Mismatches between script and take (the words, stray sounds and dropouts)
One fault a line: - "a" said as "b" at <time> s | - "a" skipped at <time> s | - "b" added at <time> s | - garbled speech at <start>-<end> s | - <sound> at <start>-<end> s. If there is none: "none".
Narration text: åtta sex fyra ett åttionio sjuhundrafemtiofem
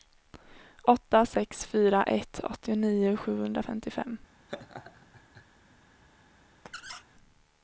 - laugh at 4.5-5.5 s
- squeak at 6.7-7.0 s